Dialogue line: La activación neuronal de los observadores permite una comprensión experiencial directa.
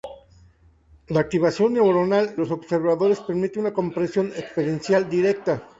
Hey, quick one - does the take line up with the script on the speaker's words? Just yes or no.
no